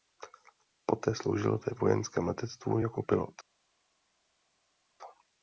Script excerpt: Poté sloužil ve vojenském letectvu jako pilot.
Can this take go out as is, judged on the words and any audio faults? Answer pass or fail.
pass